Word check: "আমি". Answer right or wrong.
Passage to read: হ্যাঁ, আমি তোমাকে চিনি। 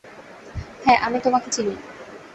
right